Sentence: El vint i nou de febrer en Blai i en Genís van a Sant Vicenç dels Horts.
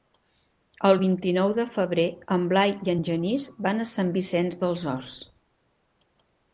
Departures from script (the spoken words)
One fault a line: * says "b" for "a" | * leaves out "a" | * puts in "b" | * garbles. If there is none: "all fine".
all fine